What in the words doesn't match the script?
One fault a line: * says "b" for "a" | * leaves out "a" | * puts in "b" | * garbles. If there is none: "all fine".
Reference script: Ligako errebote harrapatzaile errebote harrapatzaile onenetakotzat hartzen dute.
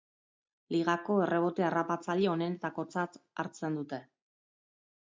* leaves out "errebote harrapatzaile"